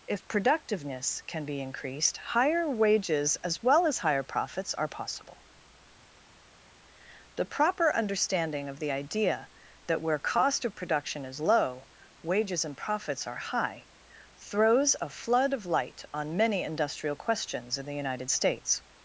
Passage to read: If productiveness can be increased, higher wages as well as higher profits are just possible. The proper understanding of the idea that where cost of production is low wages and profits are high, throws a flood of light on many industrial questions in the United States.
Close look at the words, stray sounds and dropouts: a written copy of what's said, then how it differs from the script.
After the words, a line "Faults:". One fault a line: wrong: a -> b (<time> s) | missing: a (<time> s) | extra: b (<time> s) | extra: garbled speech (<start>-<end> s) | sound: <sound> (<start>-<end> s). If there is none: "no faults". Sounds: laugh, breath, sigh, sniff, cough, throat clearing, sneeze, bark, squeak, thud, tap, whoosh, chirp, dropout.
If productiveness can be increased, higher wages as well as higher profits are possible. The proper understanding of the idea that where cost of production is low wages and profits are high, throws a flood of light on many industrial questions in the United States.
Faults:
missing: just (4.9 s)